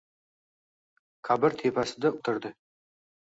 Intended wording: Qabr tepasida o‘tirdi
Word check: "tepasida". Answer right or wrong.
right